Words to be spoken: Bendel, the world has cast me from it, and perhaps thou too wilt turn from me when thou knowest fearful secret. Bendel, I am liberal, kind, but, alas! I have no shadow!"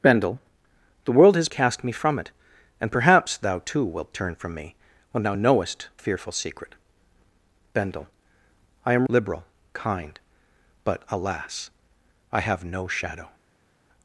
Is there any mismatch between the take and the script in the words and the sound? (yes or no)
no